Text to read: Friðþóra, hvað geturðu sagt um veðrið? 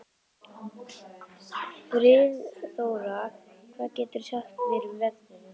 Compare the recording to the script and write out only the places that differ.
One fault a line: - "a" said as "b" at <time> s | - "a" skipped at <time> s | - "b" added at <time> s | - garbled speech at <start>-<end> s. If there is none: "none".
- "mér" added at 4.7 s